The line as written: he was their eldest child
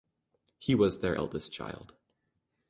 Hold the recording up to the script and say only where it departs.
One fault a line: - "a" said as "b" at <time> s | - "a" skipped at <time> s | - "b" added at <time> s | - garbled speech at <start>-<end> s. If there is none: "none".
none